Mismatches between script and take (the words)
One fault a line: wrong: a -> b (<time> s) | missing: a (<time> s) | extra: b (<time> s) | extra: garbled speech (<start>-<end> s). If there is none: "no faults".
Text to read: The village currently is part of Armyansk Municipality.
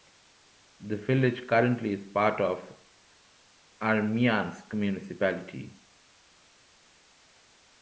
no faults